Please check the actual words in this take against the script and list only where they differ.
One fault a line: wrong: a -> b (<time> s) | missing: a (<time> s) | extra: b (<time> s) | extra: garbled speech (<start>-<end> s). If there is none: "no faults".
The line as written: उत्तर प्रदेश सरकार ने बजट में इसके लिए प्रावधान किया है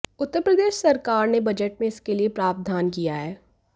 no faults